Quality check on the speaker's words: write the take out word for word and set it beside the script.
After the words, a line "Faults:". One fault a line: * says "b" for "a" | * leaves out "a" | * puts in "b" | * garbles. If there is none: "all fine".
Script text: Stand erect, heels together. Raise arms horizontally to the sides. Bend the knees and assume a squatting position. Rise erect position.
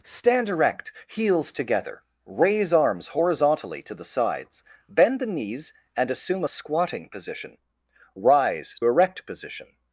Stand erect, heels together. Raise arms horizontally to the sides. Bend the knees and assume a squatting position. Rise erect position.
Faults:
all fine